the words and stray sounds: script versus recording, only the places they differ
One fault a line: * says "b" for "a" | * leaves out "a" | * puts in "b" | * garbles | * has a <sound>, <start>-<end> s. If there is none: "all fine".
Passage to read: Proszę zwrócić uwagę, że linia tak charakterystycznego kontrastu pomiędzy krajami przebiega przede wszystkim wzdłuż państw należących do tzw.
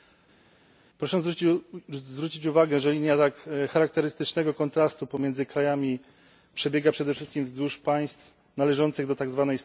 all fine